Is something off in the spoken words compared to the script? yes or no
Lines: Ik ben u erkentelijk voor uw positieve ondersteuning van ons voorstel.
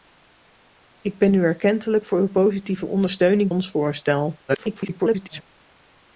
yes